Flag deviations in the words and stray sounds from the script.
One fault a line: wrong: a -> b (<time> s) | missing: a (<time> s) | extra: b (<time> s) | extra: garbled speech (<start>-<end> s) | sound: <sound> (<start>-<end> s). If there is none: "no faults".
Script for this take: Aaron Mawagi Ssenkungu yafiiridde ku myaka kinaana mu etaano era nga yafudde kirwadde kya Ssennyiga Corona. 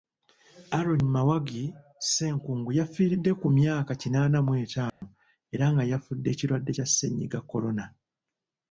sound: dropout (4.9-5.0 s)